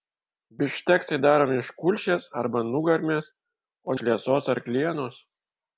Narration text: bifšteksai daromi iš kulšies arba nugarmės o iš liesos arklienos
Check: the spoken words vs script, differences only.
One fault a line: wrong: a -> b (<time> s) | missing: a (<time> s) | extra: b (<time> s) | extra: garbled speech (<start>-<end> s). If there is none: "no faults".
no faults